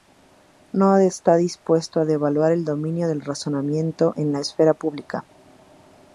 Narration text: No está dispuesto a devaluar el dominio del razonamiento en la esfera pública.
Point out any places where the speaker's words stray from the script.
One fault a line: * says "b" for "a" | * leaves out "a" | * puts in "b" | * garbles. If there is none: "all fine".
all fine